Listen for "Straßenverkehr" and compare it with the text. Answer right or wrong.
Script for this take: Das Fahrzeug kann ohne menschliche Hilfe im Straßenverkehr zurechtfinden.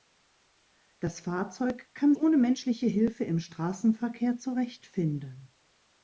right